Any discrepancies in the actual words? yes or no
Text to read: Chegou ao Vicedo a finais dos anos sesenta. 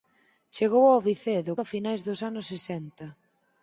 no